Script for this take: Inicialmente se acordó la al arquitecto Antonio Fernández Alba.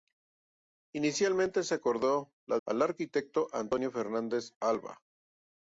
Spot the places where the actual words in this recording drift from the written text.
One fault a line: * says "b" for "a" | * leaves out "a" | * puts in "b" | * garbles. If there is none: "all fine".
all fine